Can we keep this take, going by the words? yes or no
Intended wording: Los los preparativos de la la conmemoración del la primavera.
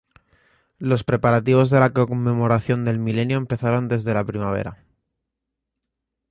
no